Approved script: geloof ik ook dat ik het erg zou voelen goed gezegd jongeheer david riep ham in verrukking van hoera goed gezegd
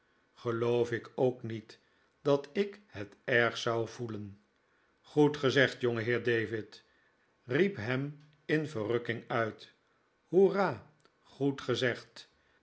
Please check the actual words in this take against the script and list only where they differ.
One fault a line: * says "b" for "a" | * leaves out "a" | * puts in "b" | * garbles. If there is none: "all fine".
* puts in "niet"
* says "uit" for "van"